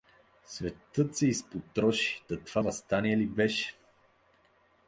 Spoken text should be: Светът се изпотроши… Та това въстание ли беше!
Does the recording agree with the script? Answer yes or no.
yes